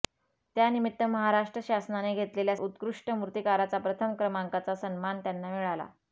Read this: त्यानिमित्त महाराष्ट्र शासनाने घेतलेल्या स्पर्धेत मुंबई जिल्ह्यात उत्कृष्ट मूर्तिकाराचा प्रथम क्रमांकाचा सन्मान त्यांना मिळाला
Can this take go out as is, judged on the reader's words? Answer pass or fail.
fail